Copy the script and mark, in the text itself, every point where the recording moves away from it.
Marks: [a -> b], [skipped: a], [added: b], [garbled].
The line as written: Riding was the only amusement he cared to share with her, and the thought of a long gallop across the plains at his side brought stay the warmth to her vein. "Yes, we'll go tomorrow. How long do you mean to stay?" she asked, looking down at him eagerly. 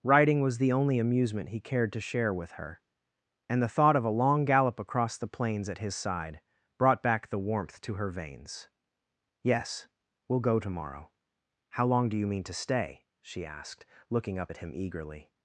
Riding was the only amusement he cared to share with her, and the thought of a long gallop across the plains at his side brought [stay -> back] the warmth to her [vein. -> veins] "Yes, we'll go tomorrow. How long do you mean to stay?" she asked, looking [down -> up] at him eagerly.